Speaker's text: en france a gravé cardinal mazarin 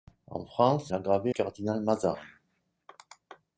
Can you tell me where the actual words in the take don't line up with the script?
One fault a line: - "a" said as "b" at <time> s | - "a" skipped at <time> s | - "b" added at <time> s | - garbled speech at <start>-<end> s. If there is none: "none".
none